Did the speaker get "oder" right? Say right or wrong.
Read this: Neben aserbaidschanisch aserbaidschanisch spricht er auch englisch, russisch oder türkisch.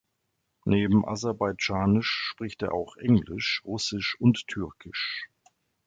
wrong